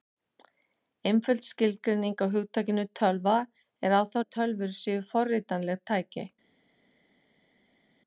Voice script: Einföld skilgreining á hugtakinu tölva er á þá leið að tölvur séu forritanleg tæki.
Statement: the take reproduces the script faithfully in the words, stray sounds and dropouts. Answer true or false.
false